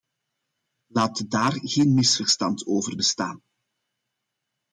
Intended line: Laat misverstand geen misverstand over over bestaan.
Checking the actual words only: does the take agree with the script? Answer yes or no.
no